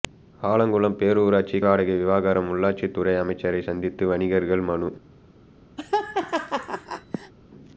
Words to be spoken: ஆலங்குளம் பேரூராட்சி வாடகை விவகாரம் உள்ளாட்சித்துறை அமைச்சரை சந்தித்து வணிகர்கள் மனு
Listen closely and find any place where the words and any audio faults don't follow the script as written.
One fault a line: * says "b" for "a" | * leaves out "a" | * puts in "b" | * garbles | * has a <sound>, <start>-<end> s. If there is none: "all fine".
* has a laugh, 5.8-7.3 s